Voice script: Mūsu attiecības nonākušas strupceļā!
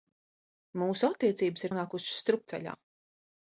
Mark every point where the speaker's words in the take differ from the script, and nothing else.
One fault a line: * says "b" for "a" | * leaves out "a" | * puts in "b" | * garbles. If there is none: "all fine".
all fine